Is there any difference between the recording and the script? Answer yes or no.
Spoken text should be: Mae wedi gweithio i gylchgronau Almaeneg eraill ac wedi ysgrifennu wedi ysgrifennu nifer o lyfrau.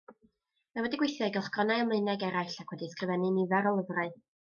yes